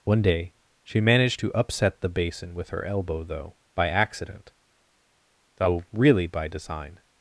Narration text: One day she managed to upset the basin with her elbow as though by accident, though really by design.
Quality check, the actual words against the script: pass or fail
fail